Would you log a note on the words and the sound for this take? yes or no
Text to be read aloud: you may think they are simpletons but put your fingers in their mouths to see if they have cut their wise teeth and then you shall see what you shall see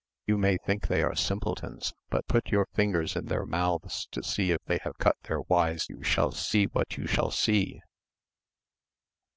yes